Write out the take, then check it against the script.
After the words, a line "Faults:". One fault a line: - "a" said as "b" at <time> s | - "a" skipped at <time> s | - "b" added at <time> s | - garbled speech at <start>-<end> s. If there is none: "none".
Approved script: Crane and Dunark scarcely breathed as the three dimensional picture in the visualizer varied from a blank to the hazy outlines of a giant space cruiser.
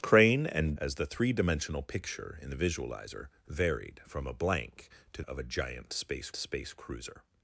Crane and As the three dimensional picture in the visualizer varied from a blank to of a giant space space cruiser.
Faults:
- "Dunark scarcely breathed" skipped at 0.8 s
- "the hazy outlines" skipped at 5.2 s
- "space" added at 6.4 s